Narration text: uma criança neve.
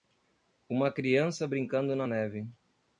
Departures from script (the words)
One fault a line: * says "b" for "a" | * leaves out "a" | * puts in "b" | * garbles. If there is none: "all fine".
* puts in "brincando na"